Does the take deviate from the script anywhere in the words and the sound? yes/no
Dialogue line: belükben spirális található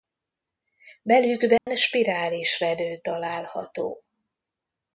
yes